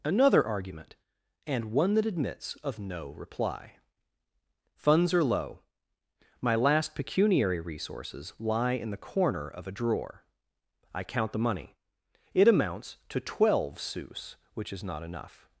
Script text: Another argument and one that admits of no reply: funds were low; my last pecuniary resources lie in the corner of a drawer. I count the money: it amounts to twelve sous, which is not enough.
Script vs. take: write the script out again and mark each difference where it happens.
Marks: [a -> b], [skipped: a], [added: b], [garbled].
Another argument and one that admits of no reply: funds [were -> are] low; my last pecuniary resources lie in the corner of a drawer. I count the money: it amounts to twelve sous, which is not enough.